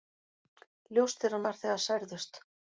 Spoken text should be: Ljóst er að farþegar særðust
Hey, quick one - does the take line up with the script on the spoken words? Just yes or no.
yes